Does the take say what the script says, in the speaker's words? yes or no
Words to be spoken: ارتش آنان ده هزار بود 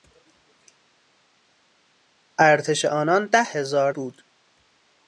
yes